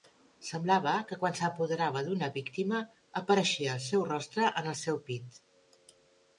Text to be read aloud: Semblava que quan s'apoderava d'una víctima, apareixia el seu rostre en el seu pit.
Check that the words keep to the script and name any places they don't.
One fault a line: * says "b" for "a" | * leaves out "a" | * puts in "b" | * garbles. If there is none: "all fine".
all fine